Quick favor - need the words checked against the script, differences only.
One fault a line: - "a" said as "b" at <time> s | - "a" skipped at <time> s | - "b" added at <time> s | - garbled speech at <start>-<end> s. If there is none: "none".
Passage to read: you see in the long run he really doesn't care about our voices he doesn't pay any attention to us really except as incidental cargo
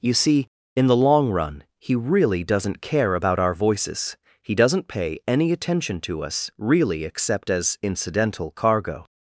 none